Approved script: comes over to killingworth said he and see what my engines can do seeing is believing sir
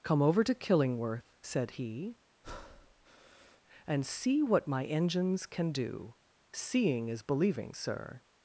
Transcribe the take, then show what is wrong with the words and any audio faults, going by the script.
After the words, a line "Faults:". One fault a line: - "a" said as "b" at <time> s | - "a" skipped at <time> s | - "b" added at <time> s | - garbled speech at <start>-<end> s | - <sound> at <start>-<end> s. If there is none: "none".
come over to killingworth said he and see what my engines can do seeing is believing sir
Faults:
- "comes" said as "come" at 0.0 s
- breath at 2.4-3.6 s